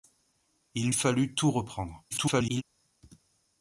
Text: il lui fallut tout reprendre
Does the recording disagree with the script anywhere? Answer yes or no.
yes